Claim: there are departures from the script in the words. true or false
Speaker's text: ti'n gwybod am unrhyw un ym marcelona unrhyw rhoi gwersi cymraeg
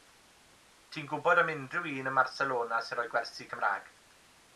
true